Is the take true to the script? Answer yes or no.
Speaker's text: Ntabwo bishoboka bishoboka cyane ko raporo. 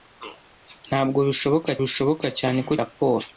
yes